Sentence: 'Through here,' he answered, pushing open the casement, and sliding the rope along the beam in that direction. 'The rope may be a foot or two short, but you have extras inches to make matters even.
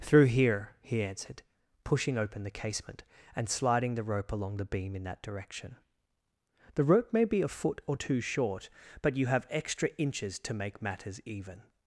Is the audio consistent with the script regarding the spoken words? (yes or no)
no